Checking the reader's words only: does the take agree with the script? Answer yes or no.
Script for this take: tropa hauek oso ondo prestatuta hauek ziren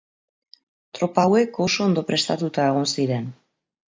no